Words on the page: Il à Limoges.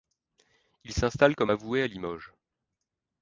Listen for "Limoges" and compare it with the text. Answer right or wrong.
right